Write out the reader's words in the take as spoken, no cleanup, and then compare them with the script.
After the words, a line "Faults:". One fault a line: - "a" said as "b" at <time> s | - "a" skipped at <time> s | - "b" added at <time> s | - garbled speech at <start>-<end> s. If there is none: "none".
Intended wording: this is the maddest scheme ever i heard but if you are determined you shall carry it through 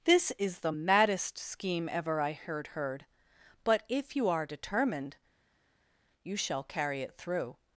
this is the maddest scheme ever i heard heard but if you are determined you shall carry it through
Faults:
- "heard" added at 2.7 s